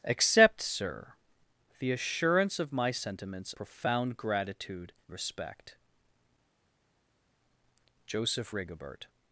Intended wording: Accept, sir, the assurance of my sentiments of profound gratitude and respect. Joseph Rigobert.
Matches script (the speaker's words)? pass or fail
fail